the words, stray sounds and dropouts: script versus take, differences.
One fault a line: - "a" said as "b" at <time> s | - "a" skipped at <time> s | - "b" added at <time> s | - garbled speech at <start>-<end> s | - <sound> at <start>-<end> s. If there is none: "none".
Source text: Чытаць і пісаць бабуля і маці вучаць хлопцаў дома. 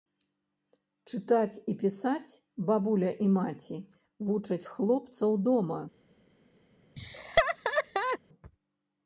- laugh at 7.0-8.2 s